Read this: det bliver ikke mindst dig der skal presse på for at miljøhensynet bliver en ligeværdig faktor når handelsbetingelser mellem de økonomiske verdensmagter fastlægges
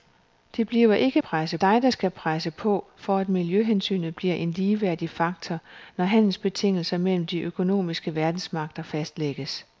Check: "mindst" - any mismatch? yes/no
yes